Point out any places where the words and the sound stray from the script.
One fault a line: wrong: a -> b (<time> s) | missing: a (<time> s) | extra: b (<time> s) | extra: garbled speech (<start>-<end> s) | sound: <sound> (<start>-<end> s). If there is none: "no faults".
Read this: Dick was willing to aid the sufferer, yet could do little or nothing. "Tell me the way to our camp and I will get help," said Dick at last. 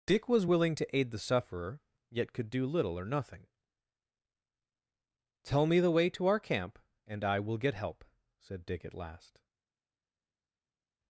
no faults